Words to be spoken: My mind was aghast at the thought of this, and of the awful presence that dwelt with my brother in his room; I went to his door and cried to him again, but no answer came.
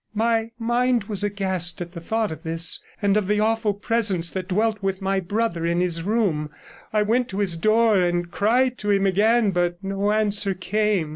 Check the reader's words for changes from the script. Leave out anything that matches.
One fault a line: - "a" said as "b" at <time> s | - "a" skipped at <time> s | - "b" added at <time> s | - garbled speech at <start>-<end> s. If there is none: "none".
none